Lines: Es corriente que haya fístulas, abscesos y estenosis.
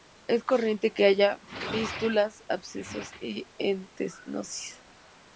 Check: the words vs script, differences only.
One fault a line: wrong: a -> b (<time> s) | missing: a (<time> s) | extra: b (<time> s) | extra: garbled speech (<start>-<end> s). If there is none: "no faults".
no faults